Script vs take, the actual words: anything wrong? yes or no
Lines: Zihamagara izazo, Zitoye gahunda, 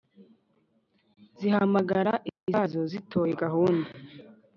no